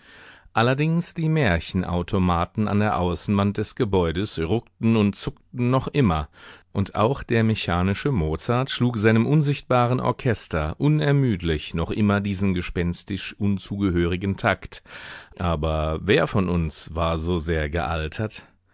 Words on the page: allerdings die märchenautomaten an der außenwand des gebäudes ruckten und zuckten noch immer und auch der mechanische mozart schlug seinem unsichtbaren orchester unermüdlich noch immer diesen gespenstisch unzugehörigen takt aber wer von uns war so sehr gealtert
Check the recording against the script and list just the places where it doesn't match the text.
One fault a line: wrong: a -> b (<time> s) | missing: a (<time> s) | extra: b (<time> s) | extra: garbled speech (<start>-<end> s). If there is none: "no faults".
no faults